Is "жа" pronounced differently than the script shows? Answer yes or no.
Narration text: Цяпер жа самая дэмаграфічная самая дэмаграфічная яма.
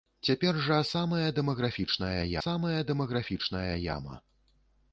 no